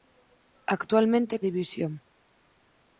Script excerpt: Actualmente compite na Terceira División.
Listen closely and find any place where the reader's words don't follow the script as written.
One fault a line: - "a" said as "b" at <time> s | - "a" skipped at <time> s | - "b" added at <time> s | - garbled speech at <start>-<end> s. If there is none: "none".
- "compite na Terceira" skipped at 1.4 s